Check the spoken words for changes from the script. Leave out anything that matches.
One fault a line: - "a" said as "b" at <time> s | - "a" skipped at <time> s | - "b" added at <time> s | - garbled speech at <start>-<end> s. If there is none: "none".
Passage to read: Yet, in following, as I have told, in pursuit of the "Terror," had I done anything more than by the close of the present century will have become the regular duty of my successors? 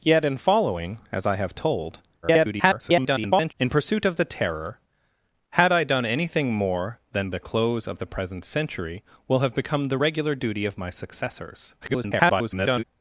- garbled speech at 2.2-3.5 s
- "by" skipped at 7.3 s
- garbled speech at 11.8-12.8 s